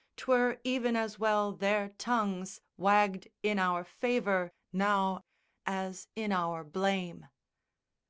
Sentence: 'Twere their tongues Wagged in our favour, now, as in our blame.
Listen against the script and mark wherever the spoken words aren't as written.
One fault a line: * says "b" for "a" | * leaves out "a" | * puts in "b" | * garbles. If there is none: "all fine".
* puts in "even as well"